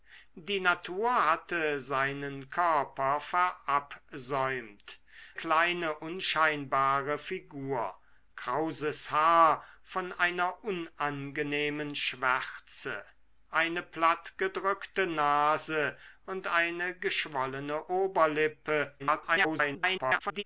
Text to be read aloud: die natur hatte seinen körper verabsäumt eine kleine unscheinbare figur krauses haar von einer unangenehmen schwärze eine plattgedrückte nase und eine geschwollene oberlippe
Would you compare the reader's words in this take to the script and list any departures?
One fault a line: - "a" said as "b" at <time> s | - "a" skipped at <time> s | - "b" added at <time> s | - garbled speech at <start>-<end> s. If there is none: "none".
- "eine" skipped at 5.0 s
- garbled speech at 19.0-20.4 s